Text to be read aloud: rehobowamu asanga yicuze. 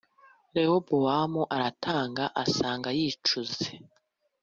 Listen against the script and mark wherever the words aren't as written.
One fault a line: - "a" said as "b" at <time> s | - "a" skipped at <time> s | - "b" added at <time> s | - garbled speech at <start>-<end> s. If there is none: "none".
- "aratanga" added at 1.5 s